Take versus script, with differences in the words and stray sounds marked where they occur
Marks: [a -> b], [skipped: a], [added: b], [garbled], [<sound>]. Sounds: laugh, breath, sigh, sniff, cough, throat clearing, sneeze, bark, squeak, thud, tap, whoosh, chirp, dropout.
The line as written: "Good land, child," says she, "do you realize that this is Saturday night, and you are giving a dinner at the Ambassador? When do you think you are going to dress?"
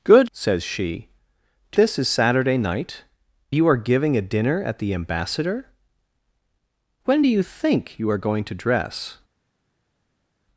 "Good [skipped: land, child,"] says she, "do [skipped: you realize that] this is Saturday night, [skipped: and] you are giving a dinner at the Ambassador? When do you think you are going to dress?"